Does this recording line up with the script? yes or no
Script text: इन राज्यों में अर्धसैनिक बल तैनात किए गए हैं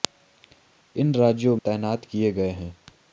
no